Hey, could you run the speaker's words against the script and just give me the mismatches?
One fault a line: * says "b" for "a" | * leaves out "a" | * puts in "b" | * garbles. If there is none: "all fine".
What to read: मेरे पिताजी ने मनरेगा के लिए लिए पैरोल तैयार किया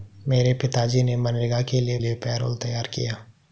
all fine